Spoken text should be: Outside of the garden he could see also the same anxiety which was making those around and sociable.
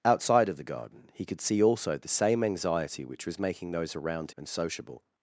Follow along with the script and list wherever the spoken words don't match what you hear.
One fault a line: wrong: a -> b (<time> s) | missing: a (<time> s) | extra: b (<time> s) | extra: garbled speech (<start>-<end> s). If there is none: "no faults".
no faults